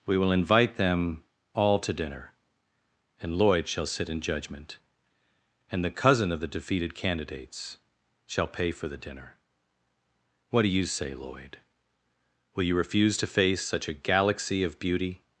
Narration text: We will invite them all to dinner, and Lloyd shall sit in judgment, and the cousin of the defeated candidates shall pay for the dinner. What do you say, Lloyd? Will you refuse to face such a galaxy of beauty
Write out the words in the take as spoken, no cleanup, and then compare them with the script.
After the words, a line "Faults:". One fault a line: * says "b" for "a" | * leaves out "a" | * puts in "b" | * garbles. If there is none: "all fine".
We will invite them all to dinner, and Lloyd shall sit in judgment, and the cousin of the defeated candidates shall pay for the dinner. What do you say, Lloyd? Will you refuse to face such a galaxy of beauty
Faults:
all fine